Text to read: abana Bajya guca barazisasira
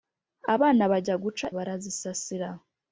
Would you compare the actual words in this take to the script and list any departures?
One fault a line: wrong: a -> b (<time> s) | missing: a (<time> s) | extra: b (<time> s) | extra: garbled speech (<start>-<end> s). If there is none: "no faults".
no faults